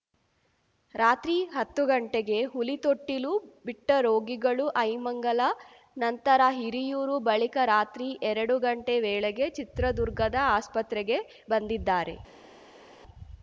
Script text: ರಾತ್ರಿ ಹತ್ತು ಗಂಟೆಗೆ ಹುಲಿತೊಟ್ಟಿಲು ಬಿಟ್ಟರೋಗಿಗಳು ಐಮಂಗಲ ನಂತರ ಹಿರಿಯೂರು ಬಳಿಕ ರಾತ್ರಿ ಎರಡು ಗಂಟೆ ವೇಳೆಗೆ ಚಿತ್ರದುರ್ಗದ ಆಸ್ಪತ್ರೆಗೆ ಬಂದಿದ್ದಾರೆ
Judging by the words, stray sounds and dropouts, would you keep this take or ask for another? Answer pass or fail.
pass